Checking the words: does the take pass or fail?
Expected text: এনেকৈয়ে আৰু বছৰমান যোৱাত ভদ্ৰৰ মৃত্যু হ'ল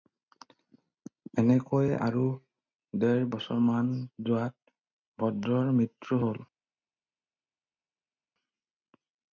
fail